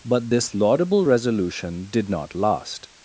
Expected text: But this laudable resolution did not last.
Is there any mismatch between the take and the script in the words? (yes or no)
no